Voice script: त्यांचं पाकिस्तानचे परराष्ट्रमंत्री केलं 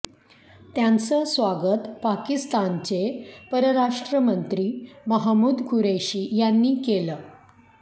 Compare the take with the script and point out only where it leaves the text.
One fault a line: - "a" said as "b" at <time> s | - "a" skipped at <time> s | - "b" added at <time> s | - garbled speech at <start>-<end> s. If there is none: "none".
- "स्वागत" added at 1.2 s
- "महमूद कुरेशी यांनी" added at 5.1 s